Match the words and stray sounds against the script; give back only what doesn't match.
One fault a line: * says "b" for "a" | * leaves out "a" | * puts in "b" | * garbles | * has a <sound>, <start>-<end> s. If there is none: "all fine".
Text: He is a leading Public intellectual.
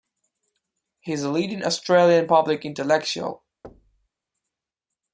* puts in "Australian"
* has a thud, 3.6-4.1 s